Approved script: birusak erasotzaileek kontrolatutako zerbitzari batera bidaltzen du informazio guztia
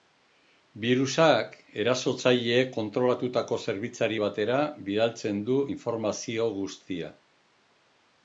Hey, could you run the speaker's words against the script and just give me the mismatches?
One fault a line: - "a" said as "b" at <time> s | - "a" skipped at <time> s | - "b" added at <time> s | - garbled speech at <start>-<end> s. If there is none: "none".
none